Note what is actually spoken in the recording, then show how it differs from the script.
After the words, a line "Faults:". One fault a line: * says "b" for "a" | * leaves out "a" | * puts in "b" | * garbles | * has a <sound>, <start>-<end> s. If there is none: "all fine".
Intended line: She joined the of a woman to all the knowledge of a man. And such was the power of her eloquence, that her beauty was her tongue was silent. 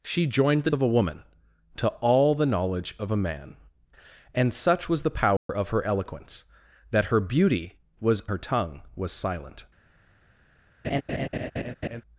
She joined the of a woman to all the knowledge of a man. And such was the power of her eloquence, that her beauty was her tongue was silent.
Faults:
* has a dropout, 5.4-5.5 s
* has a laugh, 10.8-12.0 s